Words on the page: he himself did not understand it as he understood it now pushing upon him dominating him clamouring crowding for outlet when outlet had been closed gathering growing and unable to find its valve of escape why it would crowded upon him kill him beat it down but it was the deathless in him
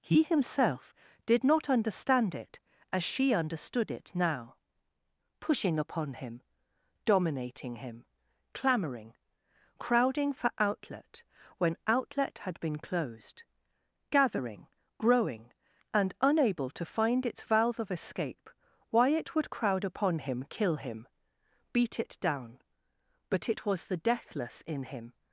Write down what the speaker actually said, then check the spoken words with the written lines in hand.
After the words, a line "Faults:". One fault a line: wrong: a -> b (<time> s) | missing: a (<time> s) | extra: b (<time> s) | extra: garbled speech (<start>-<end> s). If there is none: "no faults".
he himself did not understand it as she understood it now pushing upon him dominating him clamouring crowding for outlet when outlet had been closed gathering growing and unable to find its valve of escape why it would crowd upon him kill him beat it down but it was the deathless in him
Faults:
wrong: he -> she (3.0 s)
wrong: crowded -> crowd (19.5 s)